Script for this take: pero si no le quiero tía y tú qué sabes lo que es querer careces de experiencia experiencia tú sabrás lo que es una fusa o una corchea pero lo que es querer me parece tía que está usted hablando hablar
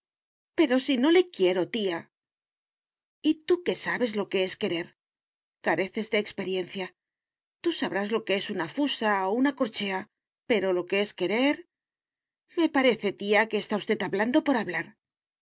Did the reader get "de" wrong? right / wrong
right